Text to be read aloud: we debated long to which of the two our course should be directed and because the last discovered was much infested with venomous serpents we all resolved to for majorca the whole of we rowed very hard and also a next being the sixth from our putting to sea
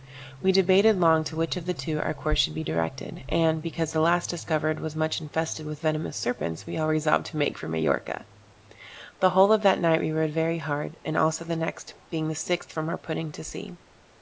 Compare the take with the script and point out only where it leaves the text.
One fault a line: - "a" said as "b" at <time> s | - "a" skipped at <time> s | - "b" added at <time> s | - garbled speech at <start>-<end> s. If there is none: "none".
- "make" added at 7.4 s
- "that night" added at 9.6 s
- "a" said as "the" at 11.4 s